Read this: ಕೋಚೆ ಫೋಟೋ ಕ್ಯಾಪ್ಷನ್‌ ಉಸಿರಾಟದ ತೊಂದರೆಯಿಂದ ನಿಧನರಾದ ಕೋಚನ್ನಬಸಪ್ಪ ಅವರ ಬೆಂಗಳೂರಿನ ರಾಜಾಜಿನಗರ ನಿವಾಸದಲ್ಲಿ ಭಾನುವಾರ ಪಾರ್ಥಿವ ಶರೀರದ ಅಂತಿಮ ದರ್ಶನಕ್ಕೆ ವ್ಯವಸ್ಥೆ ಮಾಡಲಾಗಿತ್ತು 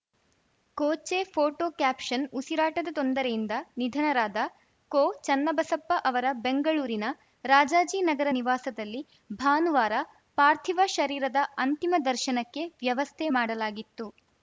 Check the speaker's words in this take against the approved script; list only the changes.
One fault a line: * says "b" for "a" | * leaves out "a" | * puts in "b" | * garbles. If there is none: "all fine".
all fine